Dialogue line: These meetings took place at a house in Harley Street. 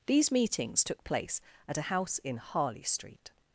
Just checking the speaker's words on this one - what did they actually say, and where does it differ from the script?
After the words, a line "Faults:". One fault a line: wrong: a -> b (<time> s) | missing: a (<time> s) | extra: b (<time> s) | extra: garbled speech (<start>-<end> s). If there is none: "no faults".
These meetings took place at a house in Harley Street.
Faults:
no faults